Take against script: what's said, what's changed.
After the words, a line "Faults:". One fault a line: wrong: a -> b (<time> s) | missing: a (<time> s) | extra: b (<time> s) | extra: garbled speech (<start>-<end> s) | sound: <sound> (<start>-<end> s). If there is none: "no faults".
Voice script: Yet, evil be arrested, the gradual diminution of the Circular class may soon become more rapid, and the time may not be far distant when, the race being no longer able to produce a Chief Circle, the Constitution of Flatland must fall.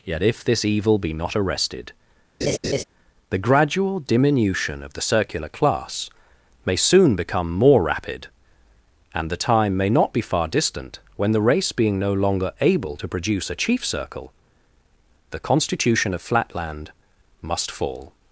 Yet, if this evil be not arrested, the gradual diminution of the Circular class may soon become more rapid, and the time may not be far distant when, the race being no longer able to produce a Chief Circle, the Constitution of Flatland must fall.
Faults:
extra: if this (0.2 s)
extra: not (1.1 s)
sound: laugh (2.4-2.8 s)